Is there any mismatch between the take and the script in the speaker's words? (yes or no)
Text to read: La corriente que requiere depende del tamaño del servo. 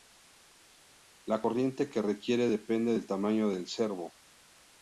no